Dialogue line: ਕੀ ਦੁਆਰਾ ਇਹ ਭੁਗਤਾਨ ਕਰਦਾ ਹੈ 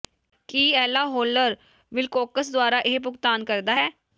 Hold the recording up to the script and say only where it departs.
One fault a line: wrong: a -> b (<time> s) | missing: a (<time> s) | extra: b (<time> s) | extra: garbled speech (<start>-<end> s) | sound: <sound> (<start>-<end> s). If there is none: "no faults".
extra: ਏਲਾ ਹੌਲਰ ਵਿਲਕੋਕਸ (0.8 s)